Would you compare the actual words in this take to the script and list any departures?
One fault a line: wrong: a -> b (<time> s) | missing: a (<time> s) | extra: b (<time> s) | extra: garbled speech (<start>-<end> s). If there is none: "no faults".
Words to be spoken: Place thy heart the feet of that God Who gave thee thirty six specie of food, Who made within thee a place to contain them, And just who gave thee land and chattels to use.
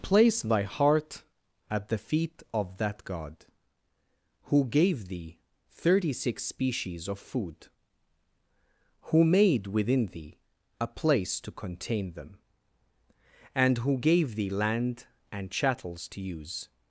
extra: at (1.7 s)
wrong: specie -> species (6.4 s)
missing: just (13.8 s)